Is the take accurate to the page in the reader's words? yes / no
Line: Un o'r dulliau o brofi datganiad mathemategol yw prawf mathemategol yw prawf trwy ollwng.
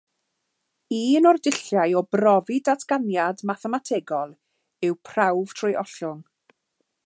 no